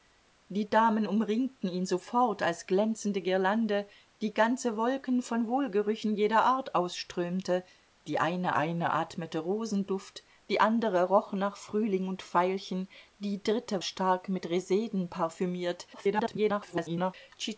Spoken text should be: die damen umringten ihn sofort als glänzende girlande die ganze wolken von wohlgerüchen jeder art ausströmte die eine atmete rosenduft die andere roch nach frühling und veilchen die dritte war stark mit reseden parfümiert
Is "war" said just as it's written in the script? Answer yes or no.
no